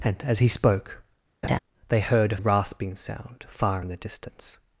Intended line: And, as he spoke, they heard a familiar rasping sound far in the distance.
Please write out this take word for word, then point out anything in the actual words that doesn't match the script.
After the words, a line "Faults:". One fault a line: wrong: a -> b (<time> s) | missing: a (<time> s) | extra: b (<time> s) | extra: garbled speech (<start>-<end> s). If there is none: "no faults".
And, as he spoke, they heard a rasping sound far in the distance.
Faults:
missing: familiar (2.4 s)